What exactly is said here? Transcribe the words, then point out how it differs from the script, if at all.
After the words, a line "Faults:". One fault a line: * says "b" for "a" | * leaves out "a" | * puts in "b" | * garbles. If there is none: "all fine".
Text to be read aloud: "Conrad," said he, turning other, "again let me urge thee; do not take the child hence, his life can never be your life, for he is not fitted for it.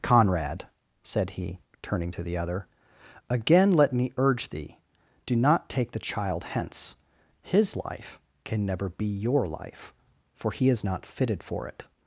"Conrad," said he, turning to the other, "again let me urge thee; do not take the child hence, his life can never be your life, for he is not fitted for it.
Faults:
* puts in "to the"